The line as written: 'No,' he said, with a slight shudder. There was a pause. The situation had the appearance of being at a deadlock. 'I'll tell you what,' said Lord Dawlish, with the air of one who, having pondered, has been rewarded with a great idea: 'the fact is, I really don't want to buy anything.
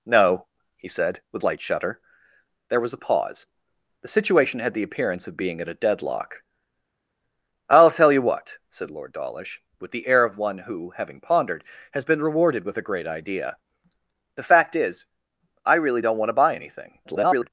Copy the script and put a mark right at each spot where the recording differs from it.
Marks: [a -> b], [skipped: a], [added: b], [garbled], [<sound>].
'No,' he said, with [skipped: a] slight shudder. There was a pause. The situation had the appearance of being at a deadlock. 'I'll tell you what,' said Lord Dawlish, with the air of one who, having pondered, has been rewarded with a great idea: 'the fact is, I really don't want to buy anything. [garbled]